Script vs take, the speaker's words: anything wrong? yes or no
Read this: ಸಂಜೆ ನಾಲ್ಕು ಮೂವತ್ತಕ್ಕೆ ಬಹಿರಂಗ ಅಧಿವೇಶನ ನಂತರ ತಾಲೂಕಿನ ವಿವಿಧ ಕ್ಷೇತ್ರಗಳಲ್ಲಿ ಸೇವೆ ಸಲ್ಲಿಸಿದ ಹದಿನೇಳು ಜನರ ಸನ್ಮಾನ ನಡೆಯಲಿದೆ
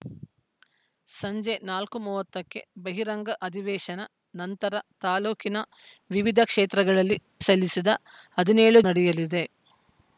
yes